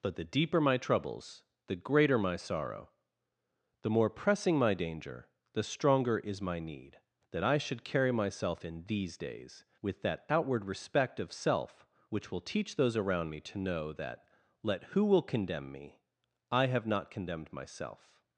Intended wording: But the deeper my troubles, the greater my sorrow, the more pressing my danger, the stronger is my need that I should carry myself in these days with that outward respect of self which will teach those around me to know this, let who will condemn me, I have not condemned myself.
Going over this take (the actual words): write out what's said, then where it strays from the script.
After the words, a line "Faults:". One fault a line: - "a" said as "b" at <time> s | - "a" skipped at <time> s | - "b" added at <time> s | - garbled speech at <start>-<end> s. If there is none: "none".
But the deeper my troubles, the greater my sorrow, the more pressing my danger, the stronger is my need that I should carry myself in these days with that outward respect of self which will teach those around me to know that, let who will condemn me, I have not condemned myself.
Faults:
- "this" said as "that" at 13.9 s